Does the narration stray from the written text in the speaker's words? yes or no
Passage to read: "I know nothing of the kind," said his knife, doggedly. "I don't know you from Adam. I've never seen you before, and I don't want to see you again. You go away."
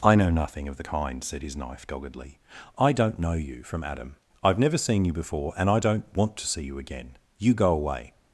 no